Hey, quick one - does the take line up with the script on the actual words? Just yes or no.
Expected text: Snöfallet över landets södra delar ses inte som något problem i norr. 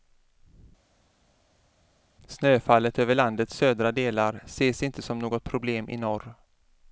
yes